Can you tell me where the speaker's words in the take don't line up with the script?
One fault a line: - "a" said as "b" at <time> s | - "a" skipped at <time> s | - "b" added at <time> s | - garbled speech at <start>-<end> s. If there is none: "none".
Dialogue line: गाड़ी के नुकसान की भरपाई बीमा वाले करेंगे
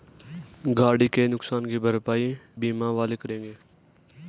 none